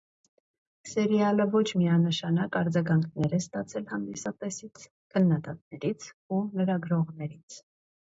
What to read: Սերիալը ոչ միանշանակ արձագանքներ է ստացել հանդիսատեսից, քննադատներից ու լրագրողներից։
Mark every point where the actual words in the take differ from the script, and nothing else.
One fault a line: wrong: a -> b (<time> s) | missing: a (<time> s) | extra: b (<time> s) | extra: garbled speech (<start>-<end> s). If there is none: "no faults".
no faults